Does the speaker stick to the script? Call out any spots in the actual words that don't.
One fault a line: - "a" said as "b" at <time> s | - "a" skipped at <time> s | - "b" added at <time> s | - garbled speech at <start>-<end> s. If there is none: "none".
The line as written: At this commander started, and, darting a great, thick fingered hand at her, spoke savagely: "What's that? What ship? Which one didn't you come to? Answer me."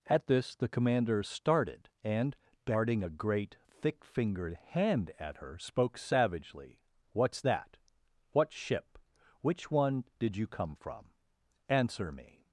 - "the" added at 0.6 s
- "didn't" said as "did" at 10.2 s
- "to" said as "from" at 10.7 s